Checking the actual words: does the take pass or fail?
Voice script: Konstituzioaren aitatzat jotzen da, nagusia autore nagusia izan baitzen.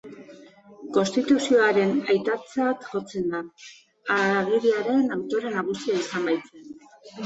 fail